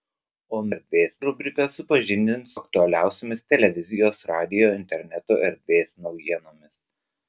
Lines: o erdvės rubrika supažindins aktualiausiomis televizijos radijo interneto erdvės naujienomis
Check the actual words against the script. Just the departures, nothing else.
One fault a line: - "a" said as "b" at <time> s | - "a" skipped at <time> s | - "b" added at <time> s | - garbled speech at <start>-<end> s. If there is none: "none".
none